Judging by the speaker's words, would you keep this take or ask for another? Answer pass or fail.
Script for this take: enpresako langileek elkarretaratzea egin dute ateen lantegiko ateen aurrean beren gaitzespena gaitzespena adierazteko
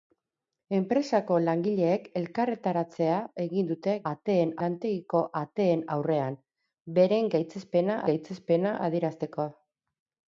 pass